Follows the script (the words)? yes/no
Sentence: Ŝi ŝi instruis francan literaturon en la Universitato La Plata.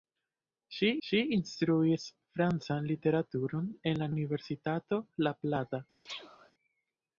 yes